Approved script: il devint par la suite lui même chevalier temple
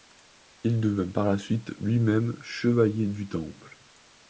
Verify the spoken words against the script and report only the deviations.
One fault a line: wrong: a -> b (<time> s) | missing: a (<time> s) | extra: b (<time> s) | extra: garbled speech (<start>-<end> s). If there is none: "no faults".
extra: du (3.0 s)